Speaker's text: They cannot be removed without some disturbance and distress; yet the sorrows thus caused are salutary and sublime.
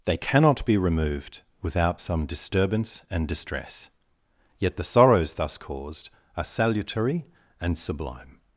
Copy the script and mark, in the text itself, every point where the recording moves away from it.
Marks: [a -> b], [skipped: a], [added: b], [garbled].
They cannot be removed without some disturbance and distress; yet the sorrows thus caused are salutary and sublime.